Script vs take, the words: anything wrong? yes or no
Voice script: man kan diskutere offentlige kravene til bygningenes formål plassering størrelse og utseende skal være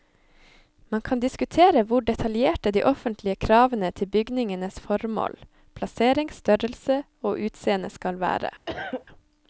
yes